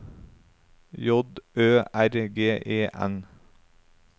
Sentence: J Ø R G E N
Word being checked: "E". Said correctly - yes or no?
yes